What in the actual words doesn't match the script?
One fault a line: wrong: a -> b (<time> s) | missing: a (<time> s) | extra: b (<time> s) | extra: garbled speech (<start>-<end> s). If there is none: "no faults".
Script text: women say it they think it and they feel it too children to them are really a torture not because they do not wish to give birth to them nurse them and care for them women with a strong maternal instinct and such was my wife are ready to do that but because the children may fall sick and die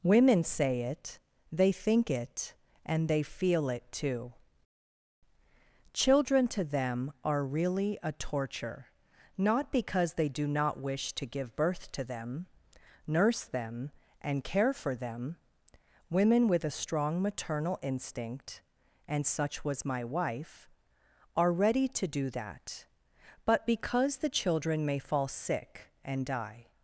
no faults